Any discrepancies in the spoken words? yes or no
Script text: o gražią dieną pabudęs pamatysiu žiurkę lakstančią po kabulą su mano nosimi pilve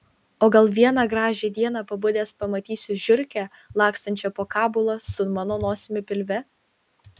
yes